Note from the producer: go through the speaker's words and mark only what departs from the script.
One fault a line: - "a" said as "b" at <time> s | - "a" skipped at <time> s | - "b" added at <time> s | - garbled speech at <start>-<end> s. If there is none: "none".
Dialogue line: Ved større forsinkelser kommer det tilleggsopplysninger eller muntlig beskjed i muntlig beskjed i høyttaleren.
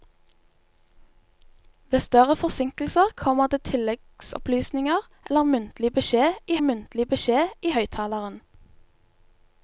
none